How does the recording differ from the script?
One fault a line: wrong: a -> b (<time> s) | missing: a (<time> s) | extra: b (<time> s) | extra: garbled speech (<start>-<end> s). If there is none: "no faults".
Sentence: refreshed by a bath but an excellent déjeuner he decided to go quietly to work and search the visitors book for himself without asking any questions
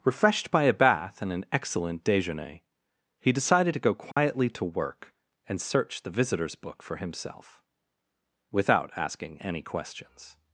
wrong: but -> and (1.2 s)